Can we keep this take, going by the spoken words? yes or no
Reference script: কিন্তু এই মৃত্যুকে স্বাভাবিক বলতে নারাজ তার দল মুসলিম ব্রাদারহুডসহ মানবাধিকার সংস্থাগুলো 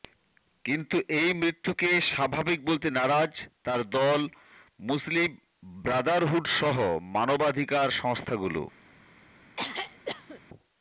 yes